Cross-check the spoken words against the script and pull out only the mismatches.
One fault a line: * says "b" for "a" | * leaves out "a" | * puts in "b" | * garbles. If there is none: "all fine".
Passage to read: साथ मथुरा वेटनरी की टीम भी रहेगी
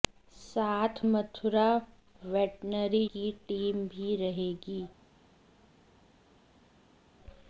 all fine